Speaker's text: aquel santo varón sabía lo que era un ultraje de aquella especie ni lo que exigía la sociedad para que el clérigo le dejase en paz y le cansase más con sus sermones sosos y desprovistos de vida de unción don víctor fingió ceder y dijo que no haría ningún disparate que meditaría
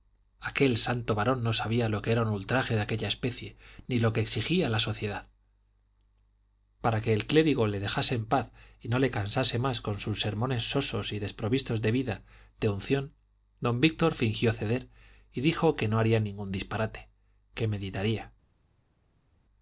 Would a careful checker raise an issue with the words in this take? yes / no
yes